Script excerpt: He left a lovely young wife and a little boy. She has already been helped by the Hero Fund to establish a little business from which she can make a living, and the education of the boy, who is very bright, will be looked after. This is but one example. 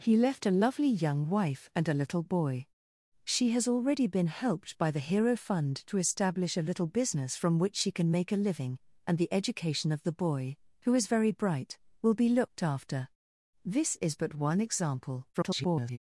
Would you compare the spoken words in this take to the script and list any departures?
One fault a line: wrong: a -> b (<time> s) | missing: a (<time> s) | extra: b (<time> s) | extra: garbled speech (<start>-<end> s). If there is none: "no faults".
extra: garbled speech (15.3-16.0 s)